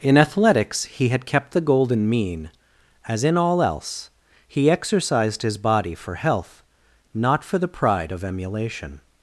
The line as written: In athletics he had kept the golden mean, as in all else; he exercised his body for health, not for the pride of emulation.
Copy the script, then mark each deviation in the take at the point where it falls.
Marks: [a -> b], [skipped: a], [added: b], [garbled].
In athletics he had kept the golden mean, as in all else; he exercised his body for health, not for the pride of emulation.